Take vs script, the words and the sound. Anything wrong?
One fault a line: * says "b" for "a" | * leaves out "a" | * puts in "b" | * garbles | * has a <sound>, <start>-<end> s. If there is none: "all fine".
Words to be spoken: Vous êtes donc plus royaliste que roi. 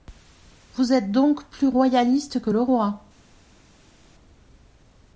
* puts in "le"